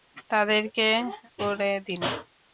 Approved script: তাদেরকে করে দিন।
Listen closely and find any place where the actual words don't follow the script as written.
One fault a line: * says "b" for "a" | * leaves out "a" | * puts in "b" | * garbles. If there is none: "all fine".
all fine